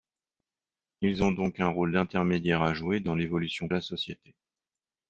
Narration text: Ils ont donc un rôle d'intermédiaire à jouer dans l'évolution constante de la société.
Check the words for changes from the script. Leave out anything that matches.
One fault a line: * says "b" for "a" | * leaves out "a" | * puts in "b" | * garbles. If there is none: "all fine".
* leaves out "constante de"